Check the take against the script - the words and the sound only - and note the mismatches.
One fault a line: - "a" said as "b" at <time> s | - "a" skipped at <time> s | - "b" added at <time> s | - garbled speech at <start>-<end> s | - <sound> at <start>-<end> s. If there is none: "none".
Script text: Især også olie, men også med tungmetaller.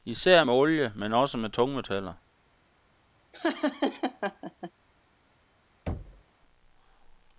- "også" said as "med" at 0.4 s
- laugh at 3.3-4.7 s
- thud at 5.9-6.2 s